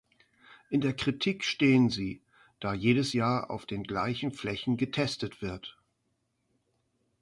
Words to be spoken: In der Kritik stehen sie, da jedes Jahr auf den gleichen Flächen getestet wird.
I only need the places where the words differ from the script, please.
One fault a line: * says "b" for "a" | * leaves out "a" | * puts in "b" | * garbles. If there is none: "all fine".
all fine